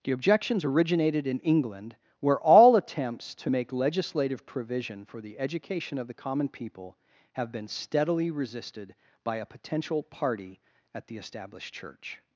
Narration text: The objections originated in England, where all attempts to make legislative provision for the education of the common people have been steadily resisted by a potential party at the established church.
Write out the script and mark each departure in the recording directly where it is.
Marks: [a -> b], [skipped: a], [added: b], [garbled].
The objections originated in England, where all attempts to make legislative provision for the education of the common people have been steadily resisted by a potential party at the established church.